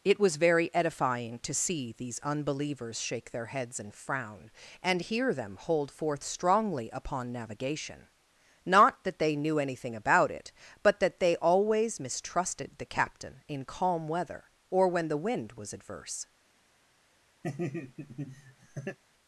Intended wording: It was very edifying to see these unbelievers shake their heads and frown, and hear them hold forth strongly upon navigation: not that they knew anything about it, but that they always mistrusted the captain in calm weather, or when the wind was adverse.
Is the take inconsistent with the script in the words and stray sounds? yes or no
yes